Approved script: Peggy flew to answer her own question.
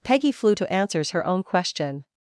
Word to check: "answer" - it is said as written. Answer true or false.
false